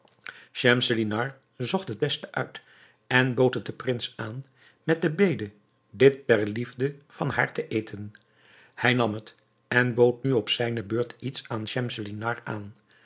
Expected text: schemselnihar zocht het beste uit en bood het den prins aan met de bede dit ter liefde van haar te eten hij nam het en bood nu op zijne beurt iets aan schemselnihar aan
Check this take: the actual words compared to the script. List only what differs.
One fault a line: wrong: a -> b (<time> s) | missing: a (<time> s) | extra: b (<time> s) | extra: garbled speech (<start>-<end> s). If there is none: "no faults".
no faults